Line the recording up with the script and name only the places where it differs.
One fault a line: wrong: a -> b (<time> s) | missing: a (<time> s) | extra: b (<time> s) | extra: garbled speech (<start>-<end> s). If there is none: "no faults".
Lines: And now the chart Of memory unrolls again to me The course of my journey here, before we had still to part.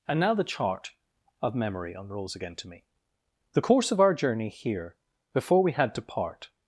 wrong: my -> our (4.0 s)
missing: still (5.9 s)